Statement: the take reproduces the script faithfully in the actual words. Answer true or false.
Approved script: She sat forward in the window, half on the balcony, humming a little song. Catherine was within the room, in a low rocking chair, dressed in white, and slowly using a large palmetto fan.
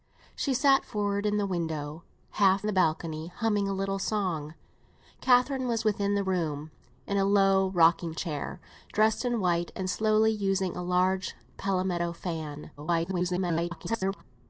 false